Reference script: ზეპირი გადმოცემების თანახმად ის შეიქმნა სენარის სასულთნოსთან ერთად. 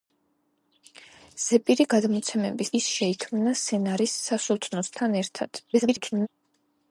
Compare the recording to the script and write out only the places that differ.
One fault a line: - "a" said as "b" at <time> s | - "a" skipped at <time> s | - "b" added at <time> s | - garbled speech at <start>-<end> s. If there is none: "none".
- "თანახმად" skipped at 2.7 s
- garbled speech at 5.7-6.3 s